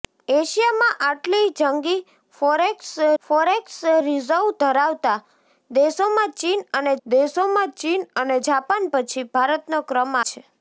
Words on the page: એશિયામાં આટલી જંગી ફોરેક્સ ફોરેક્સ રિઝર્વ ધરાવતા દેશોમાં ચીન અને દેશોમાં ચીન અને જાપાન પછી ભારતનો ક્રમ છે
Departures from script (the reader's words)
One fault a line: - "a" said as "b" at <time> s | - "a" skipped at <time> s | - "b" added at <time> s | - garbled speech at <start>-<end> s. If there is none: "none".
none